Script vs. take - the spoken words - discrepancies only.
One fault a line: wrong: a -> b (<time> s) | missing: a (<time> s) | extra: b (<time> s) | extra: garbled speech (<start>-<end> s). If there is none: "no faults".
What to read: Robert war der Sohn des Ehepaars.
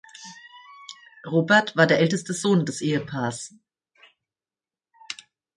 extra: älteste (2.0 s)